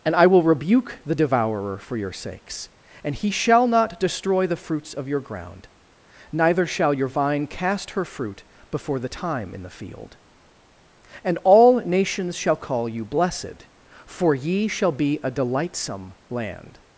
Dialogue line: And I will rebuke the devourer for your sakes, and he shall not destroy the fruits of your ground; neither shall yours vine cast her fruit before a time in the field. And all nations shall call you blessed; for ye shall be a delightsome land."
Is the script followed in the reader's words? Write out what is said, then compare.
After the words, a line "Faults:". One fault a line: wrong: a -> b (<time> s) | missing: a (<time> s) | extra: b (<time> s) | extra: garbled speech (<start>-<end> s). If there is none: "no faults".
And I will rebuke the devourer for your sakes, and he shall not destroy the fruits of your ground; neither shall your vine cast her fruit before the time in the field. And all nations shall call you blessed; for ye shall be a delightsome land."
Faults:
wrong: yours -> your (6.9 s)
wrong: a -> the (9.0 s)